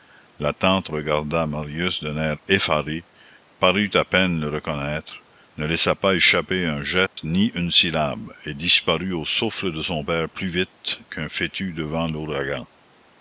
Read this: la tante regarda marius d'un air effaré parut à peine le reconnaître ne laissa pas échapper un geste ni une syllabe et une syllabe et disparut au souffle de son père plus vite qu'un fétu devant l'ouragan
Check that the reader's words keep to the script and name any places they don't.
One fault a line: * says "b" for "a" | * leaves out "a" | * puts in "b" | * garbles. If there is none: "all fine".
* leaves out "une syllabe et"